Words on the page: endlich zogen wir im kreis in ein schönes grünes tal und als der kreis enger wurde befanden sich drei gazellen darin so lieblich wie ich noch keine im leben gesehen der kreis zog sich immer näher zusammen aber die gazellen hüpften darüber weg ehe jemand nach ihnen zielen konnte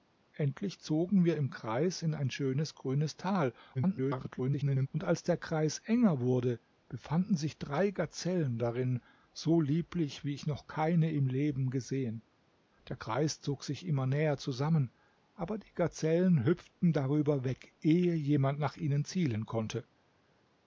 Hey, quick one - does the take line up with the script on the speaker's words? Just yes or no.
no